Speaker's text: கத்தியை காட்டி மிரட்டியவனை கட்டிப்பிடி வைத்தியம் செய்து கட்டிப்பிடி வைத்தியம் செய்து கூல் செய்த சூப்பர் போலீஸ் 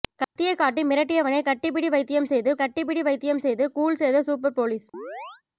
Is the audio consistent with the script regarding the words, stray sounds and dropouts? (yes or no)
no